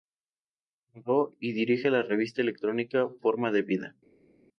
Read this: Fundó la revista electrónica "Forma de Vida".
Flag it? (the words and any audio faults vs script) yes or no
yes